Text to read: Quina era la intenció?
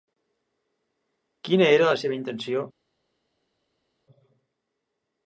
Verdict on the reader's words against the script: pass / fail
fail